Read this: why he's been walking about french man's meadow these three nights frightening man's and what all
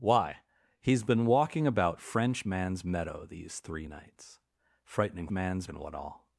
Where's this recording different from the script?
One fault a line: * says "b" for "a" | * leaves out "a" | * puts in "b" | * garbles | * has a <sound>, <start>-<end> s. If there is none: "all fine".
all fine